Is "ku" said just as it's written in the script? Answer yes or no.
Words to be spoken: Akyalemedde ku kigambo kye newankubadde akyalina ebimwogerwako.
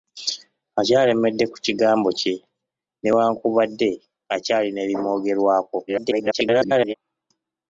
yes